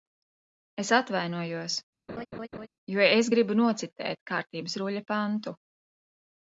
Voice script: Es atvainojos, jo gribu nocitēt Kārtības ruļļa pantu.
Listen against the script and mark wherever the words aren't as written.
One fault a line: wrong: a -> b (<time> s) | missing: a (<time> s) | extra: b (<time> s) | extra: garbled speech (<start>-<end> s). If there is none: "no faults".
extra: es (3.1 s)